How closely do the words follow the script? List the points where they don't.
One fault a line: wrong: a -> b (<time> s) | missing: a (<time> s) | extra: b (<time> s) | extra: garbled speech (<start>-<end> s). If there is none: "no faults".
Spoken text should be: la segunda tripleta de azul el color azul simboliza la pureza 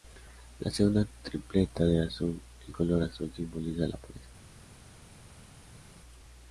no faults